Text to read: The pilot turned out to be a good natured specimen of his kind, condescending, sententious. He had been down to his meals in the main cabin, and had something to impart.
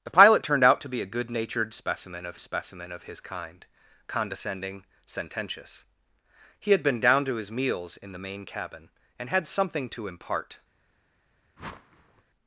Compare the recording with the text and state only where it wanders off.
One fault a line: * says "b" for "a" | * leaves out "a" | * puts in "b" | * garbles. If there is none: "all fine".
* puts in "specimen of"